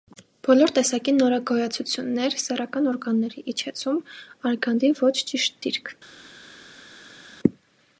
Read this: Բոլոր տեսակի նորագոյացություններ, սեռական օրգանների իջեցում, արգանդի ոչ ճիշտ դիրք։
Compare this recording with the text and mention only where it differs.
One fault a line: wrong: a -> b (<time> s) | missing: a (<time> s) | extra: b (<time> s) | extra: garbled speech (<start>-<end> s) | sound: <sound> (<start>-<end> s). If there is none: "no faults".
no faults